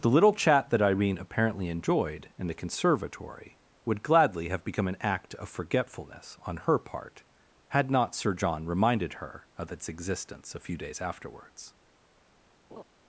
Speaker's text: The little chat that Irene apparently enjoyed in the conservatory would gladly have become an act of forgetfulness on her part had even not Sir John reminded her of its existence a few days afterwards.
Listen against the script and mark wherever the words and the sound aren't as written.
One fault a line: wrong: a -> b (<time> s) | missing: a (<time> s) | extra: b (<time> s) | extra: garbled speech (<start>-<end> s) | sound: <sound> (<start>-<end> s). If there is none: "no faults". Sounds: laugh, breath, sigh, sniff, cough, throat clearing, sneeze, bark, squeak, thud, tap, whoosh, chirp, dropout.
missing: even (7.9 s)
sound: laugh (12.7-12.8 s)